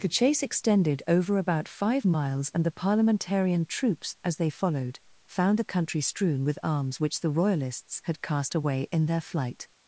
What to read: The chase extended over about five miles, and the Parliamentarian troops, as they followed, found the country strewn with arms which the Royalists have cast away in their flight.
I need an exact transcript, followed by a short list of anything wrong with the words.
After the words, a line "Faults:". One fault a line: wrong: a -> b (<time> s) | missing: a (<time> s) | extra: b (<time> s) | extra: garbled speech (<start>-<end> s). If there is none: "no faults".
The chase extended over about five miles, and the Parliamentarian troops, as they followed, found the country strewn with arms which the Royalists had cast away in their flight.
Faults:
wrong: have -> had (8.0 s)